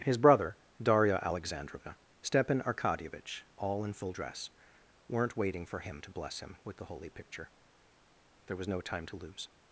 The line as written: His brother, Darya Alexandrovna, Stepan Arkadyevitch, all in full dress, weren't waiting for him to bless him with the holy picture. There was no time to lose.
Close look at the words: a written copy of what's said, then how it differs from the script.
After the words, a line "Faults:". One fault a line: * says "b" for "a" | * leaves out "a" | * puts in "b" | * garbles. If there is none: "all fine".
His brother, Darya Alexandrovna, Stepan Arkadyevitch, all in full dress, weren't waiting for him to bless him with the holy picture. There was no time to lose.
Faults:
all fine